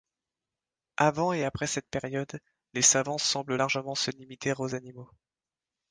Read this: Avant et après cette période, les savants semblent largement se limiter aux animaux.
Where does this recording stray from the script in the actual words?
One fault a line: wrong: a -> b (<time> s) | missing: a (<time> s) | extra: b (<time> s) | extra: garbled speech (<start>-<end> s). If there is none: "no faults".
no faults